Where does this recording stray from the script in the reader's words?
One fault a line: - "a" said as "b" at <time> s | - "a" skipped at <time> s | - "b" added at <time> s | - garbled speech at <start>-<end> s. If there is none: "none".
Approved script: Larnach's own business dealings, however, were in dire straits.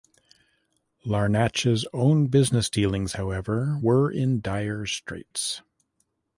none